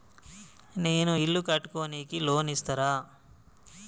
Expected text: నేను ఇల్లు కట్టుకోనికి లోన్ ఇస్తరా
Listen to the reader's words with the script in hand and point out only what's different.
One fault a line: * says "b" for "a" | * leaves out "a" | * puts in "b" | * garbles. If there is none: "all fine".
all fine